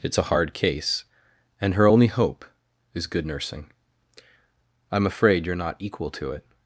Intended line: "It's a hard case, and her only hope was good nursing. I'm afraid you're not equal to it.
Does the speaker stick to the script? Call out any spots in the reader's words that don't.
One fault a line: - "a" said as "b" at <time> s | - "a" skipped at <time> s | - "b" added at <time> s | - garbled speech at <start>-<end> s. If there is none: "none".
- "was" said as "is" at 2.9 s